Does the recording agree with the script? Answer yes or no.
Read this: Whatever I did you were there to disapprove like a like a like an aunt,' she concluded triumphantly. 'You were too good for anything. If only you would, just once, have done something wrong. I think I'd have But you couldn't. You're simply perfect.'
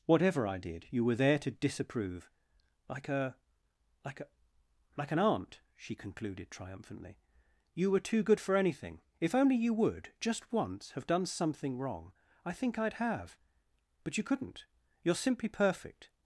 yes